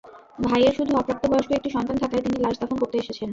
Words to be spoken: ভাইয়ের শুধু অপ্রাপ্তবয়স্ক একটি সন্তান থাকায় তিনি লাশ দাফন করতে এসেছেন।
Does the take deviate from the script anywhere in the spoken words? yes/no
no